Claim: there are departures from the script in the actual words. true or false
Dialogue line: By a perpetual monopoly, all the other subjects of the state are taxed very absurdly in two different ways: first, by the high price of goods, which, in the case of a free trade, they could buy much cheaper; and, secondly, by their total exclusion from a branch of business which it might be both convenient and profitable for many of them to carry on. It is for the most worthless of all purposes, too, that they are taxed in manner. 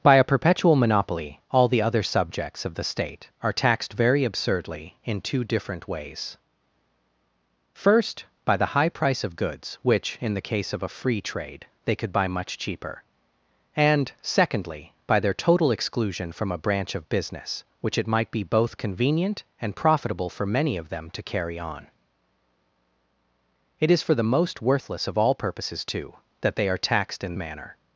false